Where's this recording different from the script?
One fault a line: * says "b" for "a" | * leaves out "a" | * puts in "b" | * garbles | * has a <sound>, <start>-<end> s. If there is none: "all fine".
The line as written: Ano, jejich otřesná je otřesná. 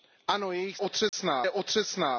* has a dropout, 1.1-1.1 s